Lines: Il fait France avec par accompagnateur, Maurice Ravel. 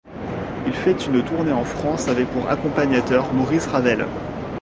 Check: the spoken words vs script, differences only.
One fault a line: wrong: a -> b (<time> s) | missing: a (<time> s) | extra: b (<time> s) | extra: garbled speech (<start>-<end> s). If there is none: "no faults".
extra: une tournée en (1.1 s)
wrong: par -> pour (2.3 s)